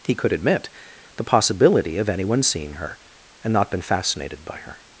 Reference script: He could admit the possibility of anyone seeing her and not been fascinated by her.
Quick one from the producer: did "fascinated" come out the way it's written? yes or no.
yes